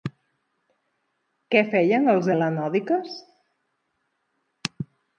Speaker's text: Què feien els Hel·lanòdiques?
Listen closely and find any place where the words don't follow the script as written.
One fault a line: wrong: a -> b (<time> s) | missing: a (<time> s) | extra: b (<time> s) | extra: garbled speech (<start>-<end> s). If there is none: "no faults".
no faults